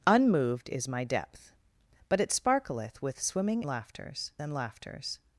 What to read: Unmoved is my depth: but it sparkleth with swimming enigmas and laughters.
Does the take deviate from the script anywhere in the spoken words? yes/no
yes